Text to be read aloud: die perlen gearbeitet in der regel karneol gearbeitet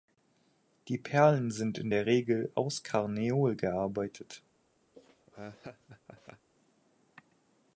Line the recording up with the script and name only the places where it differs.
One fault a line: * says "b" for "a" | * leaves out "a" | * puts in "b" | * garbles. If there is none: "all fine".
* says "sind" for "gearbeitet"
* puts in "aus"